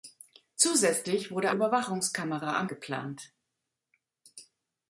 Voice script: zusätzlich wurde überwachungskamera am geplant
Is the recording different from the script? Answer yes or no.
no